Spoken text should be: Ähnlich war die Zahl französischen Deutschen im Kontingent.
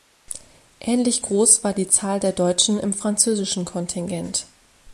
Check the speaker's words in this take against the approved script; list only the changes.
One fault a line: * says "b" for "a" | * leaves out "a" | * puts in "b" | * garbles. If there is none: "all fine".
* puts in "groß"
* says "der" for "französischen"
* puts in "französischen"